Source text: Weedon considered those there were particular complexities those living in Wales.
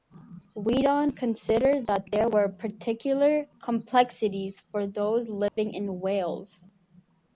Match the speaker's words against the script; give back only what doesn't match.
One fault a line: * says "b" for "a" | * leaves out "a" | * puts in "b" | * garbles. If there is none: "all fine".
* says "that" for "those"
* puts in "for"